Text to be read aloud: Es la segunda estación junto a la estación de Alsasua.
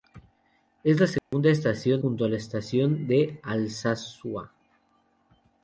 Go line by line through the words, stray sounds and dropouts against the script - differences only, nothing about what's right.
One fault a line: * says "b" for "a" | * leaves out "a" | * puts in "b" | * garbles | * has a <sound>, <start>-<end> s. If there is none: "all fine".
* has a dropout, 1.2-1.3 s